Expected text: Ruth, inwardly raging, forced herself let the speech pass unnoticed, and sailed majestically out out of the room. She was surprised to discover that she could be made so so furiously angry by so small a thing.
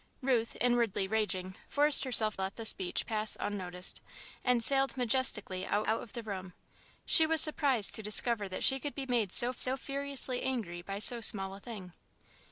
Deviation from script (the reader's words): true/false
false